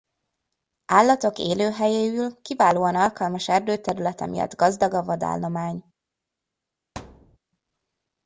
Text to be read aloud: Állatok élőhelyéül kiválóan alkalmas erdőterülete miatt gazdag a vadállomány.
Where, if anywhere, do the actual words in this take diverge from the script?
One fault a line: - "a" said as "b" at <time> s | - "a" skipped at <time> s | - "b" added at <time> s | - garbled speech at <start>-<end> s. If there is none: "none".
none